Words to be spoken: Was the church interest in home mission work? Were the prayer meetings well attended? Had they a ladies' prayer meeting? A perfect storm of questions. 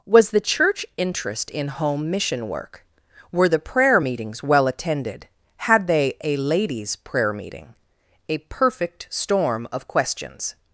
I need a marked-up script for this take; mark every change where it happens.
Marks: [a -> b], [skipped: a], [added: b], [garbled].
Was the church interest in home mission work? Were the prayer meetings well attended? Had they a ladies' prayer meeting? A perfect storm of questions.